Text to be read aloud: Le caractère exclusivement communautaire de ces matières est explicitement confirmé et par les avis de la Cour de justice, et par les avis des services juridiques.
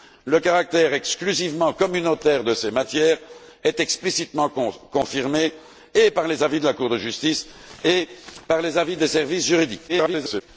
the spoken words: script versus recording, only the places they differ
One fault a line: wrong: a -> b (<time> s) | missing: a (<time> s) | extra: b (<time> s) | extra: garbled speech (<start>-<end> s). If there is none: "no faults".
extra: garbled speech (9.9-10.4 s)